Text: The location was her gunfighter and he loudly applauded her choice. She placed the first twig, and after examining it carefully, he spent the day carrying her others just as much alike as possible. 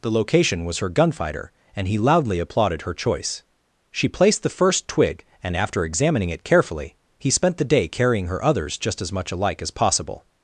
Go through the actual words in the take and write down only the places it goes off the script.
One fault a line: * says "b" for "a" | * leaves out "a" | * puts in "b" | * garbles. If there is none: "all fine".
all fine